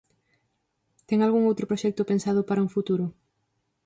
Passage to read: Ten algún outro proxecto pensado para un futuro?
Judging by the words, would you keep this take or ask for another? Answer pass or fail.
pass